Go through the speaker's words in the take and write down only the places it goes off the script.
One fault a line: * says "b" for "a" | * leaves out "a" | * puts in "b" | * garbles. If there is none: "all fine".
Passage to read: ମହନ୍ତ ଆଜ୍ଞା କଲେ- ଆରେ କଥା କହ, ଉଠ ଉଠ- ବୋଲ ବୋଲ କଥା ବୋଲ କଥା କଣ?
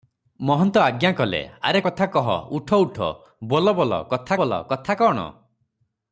all fine